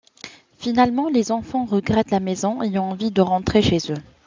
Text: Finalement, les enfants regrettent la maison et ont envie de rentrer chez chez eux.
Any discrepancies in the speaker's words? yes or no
yes